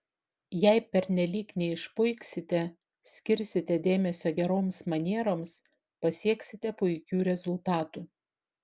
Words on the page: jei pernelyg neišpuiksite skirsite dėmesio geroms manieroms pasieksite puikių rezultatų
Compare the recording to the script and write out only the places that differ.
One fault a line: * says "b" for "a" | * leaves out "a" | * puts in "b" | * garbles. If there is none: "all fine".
all fine